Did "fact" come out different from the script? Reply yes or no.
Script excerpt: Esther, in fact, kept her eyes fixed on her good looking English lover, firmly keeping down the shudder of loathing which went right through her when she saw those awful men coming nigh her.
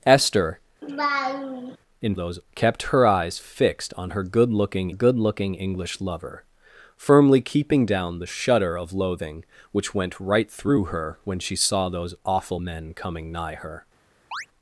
yes